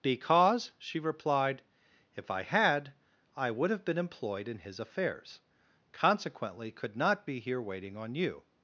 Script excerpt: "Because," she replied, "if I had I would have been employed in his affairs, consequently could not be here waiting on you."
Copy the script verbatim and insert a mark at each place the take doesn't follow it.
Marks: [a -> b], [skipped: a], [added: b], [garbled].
"Because," she replied, "if I had I would have been employed in his affairs, consequently could not be here waiting on you."